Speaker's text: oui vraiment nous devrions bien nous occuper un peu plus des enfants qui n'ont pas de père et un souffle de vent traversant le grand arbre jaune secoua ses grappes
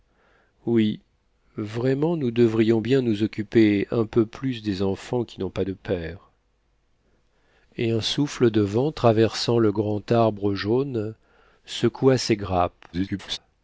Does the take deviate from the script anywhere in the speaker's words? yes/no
yes